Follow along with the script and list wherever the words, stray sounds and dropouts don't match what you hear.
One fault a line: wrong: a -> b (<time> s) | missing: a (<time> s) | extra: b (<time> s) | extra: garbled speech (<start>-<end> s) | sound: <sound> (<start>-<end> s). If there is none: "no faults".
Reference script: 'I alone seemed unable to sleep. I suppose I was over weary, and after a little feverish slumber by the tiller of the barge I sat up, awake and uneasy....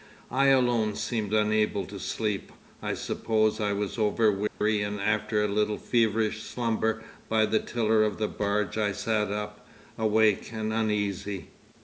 sound: dropout (4.5-4.6 s)